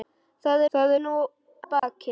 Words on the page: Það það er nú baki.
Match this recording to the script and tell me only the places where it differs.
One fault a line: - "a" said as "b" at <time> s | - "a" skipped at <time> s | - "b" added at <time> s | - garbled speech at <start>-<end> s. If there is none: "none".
none